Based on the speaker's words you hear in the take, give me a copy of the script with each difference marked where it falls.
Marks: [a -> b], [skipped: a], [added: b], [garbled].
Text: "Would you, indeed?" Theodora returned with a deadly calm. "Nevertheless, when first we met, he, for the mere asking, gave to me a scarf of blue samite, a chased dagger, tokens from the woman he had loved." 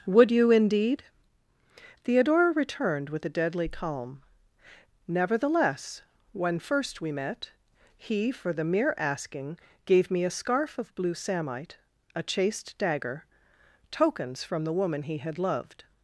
"Would you, indeed?" Theodora returned with a deadly calm. "Nevertheless, when first we met, he, for the mere asking, gave [skipped: to] me a scarf of blue samite, a chased dagger, tokens from the woman he had loved."